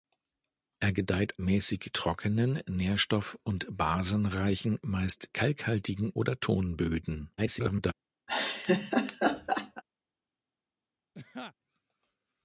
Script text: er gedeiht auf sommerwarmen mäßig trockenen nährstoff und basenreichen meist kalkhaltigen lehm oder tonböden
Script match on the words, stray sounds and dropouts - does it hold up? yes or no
no